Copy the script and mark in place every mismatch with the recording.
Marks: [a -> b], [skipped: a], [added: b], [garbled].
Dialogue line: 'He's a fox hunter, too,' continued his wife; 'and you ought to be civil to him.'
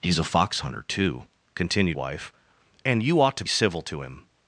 'He's a fox hunter, too,' continued [skipped: his] wife; 'and you ought to [skipped: be] civil to him.'